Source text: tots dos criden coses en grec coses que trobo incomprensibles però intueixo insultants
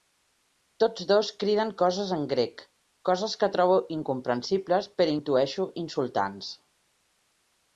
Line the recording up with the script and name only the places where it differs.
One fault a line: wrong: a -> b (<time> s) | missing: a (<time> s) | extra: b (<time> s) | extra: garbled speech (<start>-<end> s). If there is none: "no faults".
no faults